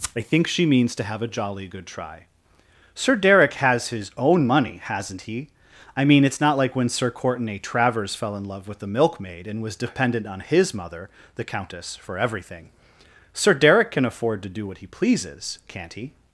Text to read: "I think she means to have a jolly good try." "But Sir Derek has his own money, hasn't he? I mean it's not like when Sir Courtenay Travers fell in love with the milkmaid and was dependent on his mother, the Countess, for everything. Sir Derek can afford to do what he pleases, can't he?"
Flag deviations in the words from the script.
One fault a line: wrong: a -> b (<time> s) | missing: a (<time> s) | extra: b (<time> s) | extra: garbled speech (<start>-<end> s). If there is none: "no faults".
missing: But (2.2 s)